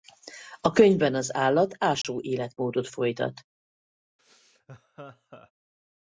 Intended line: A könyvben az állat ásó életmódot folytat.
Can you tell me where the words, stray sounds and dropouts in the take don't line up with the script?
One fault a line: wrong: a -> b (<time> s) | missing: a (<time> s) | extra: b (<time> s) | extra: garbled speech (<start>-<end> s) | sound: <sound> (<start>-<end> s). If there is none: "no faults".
sound: dropout (2.0-2.0 s)
sound: laugh (4.2-5.5 s)